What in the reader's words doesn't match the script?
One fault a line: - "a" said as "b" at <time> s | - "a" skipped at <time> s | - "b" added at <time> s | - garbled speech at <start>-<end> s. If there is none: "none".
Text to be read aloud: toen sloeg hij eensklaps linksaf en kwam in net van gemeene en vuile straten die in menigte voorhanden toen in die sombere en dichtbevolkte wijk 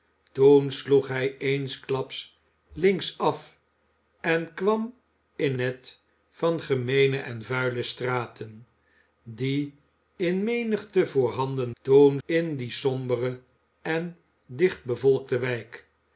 none